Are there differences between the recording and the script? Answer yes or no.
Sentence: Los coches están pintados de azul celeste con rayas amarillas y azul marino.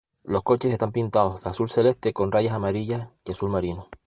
no